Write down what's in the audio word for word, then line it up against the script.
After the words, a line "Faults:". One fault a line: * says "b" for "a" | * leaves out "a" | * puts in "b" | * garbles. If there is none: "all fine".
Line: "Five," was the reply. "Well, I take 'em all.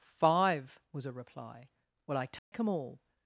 "Five," was a reply. "Well, I take 'em all.
Faults:
* says "a" for "the"